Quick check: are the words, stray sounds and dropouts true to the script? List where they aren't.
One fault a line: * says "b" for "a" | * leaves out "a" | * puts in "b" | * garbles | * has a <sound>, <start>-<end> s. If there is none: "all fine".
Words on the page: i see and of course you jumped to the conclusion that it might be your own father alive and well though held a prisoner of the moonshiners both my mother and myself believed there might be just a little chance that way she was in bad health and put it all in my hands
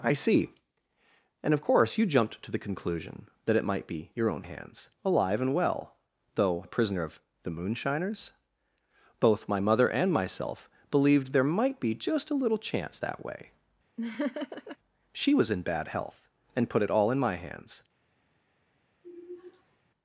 * says "hands" for "father"
* leaves out "held"
* has a laugh, 14.0-14.8 s
* has a sigh, 19.0-19.8 s